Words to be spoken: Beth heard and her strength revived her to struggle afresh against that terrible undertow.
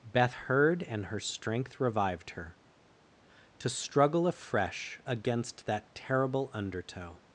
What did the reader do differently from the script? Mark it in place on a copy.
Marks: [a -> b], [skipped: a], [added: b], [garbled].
Beth heard and her strength revived her to struggle afresh against that terrible undertow.